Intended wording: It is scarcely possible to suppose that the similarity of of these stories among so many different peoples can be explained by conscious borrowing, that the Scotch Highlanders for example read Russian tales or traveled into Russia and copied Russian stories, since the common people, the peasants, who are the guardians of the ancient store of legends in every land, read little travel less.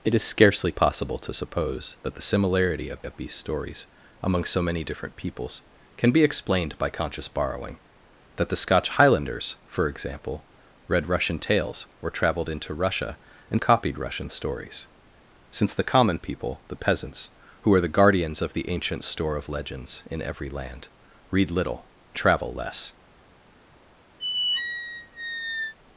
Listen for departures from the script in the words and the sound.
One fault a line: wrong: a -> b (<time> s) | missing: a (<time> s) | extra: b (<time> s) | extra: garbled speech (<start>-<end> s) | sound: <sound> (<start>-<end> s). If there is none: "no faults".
sound: squeak (24.2-25.7 s)